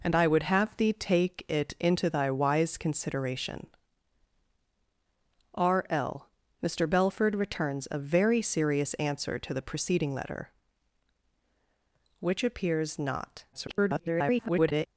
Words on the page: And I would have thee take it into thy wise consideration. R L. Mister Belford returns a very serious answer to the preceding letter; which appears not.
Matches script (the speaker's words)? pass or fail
fail